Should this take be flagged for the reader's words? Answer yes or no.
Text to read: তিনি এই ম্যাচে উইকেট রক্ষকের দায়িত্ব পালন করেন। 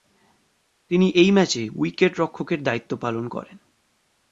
no